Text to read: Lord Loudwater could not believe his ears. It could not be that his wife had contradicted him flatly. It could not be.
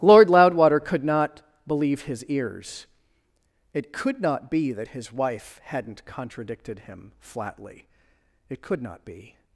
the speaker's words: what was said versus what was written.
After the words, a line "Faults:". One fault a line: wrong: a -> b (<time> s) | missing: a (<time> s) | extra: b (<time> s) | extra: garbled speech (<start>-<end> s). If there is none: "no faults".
Lord Loudwater could not believe his ears. It could not be that his wife hadn't contradicted him flatly. It could not be.
Faults:
wrong: had -> hadn't (5.6 s)